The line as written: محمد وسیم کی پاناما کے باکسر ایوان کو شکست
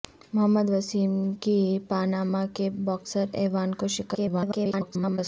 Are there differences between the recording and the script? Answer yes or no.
yes